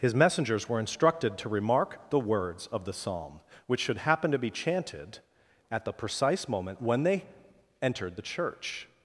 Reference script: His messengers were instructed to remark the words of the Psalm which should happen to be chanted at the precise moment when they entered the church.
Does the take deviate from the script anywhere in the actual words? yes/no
no